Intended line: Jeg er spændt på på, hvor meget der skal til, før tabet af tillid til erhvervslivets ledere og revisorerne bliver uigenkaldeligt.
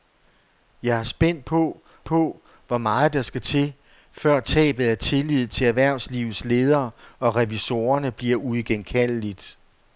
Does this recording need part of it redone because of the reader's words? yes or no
no